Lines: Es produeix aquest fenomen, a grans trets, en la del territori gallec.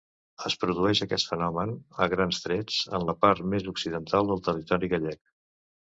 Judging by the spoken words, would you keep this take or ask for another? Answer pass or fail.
fail